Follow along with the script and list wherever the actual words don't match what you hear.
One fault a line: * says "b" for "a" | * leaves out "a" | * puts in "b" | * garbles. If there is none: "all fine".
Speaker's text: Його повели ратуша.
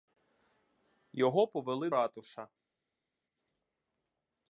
all fine